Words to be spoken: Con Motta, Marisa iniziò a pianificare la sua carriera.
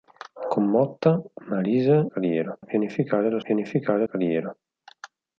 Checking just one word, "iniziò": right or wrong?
wrong